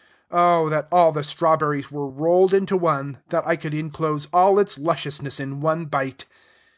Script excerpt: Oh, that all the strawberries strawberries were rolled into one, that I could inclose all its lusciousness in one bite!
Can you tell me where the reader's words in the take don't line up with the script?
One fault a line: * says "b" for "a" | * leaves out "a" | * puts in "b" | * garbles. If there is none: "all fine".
* leaves out "strawberries"